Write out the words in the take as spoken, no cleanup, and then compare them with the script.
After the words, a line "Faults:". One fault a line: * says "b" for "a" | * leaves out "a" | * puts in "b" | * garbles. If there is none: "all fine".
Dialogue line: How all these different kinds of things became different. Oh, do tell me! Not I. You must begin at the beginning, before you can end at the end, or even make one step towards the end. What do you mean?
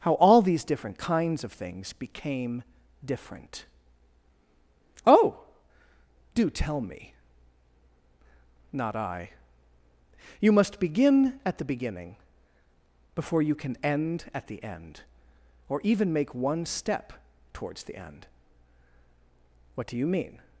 How all these different kinds of things became different. Oh, do tell me! Not I. You must begin at the beginning, before you can end at the end, or even make one step towards the end. What do you mean?
Faults:
all fine